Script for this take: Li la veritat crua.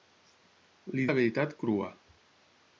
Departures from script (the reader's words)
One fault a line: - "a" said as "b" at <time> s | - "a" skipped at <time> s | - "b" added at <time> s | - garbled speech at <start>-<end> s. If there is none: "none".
none